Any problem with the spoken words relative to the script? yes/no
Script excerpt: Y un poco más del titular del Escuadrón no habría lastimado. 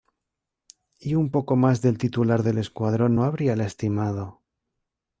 no